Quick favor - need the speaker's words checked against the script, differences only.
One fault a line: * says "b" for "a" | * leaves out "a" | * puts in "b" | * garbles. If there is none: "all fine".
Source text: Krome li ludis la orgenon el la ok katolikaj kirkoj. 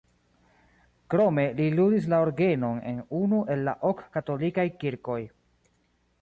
* puts in "en unu"